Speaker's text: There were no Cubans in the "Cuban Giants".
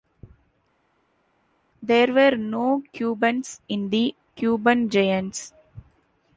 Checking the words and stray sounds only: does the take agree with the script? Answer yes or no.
yes